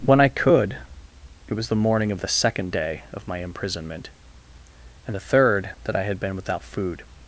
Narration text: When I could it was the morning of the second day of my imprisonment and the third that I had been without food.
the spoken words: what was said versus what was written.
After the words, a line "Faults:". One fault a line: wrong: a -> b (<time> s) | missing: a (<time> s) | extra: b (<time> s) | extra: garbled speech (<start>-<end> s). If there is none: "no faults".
When I could it was the morning of the second day of my imprisonment and the third that I had been without food.
Faults:
no faults